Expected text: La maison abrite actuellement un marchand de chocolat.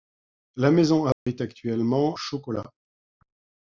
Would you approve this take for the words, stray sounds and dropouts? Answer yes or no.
no